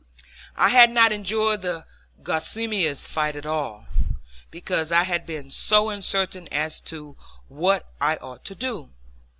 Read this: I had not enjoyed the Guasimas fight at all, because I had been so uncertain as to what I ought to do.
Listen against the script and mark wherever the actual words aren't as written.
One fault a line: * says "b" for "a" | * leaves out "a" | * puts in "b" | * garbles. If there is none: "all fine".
all fine